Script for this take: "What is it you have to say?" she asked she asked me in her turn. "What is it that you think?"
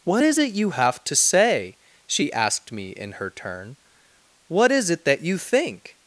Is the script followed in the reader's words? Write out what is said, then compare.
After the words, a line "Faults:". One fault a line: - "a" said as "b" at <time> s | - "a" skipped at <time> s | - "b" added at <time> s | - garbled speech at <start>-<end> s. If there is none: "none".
"What is it you have to say?" she asked me in her turn. "What is it that you think?"
Faults:
- "she asked" skipped at 2.7 s